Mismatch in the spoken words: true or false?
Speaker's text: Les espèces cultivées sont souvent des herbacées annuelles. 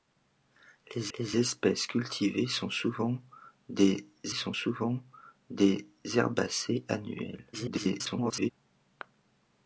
true